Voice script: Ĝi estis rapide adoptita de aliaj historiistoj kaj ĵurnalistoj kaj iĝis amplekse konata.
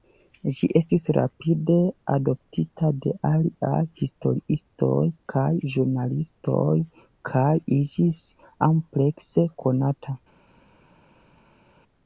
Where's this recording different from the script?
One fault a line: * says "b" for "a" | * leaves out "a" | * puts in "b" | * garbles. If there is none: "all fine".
all fine